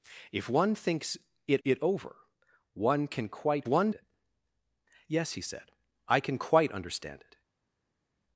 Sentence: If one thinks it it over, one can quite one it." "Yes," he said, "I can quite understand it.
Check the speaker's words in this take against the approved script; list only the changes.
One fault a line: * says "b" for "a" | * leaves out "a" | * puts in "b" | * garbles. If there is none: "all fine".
all fine